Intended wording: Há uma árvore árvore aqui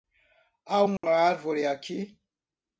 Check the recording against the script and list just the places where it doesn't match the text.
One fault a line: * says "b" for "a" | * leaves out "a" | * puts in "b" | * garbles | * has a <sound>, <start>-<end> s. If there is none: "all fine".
* has a dropout, 1.0-1.0 s
* leaves out "árvore"